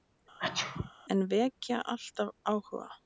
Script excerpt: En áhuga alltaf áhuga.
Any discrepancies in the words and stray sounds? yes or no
yes